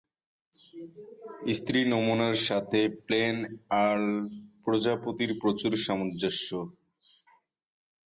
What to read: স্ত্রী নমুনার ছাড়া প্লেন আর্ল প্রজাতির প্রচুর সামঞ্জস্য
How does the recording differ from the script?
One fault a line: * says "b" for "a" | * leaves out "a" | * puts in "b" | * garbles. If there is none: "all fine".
* says "সাথে" for "ছাড়া"